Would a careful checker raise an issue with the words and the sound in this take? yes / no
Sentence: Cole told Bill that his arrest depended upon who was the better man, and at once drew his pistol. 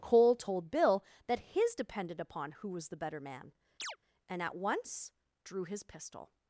yes